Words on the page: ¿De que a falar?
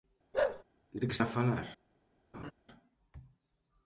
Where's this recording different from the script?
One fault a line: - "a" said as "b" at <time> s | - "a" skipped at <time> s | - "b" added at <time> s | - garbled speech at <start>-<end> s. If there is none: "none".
none